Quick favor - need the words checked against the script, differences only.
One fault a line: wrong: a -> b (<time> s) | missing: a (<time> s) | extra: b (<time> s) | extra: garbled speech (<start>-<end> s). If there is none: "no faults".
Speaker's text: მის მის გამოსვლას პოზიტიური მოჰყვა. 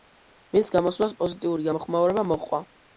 missing: მის (0.7 s)
extra: გამოხმაურება (1.7 s)